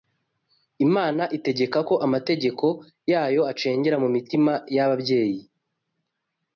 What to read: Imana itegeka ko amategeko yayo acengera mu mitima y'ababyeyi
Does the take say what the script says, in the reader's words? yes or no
yes